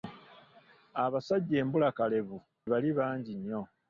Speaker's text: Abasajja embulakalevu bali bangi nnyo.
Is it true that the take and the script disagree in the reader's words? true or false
false